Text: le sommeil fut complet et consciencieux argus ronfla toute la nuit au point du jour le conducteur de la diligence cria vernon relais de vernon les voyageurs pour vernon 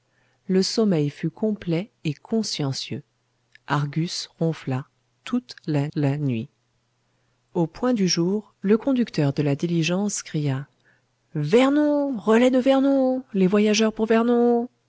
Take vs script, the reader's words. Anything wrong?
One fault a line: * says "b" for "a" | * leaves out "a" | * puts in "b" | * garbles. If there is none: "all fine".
* puts in "la"